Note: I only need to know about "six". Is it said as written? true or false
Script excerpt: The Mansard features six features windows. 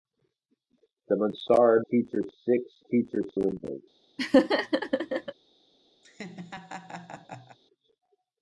true